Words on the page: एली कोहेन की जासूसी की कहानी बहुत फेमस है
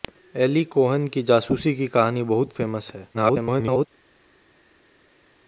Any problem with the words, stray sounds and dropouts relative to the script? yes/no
yes